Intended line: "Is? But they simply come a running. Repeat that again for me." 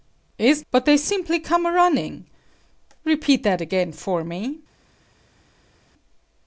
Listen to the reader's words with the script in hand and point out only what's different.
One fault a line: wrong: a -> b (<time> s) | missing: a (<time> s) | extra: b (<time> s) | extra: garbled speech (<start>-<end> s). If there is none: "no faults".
no faults